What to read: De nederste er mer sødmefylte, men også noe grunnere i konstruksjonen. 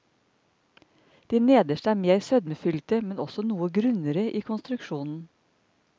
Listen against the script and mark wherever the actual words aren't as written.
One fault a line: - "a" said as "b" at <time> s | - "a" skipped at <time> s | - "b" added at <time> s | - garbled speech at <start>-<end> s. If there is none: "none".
none